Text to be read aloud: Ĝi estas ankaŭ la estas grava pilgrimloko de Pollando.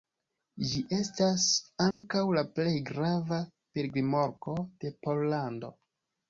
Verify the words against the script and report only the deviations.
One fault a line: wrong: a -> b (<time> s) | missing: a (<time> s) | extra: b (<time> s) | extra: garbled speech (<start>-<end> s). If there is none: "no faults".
wrong: estas -> plej (2.5 s)